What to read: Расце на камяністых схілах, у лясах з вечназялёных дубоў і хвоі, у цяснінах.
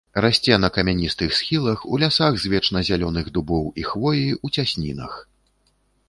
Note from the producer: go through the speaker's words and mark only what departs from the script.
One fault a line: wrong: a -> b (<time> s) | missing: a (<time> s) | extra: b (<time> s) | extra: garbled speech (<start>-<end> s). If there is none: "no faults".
no faults